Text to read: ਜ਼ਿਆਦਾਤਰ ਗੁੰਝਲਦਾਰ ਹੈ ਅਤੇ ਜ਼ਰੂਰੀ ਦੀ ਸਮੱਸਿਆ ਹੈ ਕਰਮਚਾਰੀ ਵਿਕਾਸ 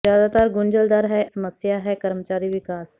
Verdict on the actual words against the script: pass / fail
fail